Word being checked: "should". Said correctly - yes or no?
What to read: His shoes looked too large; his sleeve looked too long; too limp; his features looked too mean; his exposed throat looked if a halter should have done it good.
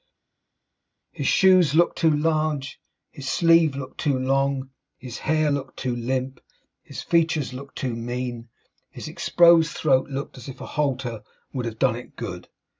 no